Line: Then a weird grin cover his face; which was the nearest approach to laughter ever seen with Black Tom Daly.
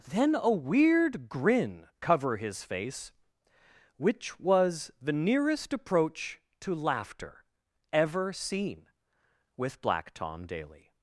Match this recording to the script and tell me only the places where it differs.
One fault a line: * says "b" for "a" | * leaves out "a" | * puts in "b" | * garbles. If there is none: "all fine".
all fine